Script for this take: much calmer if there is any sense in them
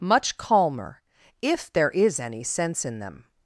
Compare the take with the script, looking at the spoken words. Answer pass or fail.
pass